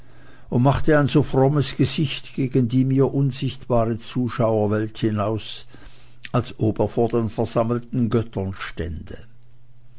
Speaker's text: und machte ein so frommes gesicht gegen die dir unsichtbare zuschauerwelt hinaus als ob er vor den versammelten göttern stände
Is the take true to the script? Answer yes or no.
no